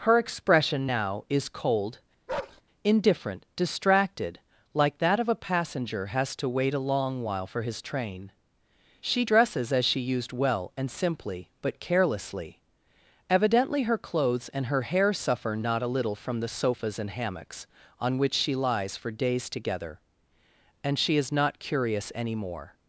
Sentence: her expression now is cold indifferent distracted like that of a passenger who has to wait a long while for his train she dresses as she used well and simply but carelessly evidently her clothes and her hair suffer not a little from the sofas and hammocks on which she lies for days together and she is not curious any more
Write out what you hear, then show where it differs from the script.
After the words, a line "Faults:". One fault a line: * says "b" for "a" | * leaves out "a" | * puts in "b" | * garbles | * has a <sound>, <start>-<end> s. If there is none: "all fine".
her expression now is cold indifferent distracted like that of a passenger has to wait a long while for his train she dresses as she used well and simply but carelessly evidently her clothes and her hair suffer not a little from the sofas and hammocks on which she lies for days together and she is not curious any more
Faults:
* has a bark, 2.3-2.6 s
* leaves out "who"